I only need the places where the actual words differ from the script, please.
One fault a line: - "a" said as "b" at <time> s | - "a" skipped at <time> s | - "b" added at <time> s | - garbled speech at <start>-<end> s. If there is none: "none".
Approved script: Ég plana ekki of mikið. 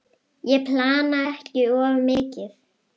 none